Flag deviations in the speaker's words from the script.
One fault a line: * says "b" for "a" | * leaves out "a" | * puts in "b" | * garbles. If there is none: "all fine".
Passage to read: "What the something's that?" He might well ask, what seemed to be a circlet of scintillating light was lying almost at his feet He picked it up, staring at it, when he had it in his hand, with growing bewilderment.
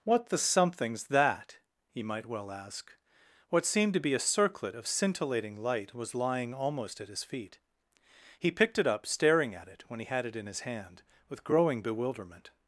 all fine